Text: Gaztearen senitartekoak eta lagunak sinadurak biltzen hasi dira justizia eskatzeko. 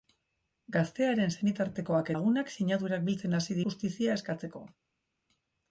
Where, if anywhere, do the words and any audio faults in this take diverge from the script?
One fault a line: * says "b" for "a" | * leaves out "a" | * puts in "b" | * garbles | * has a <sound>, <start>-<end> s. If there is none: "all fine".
* leaves out "eta"
* leaves out "dira"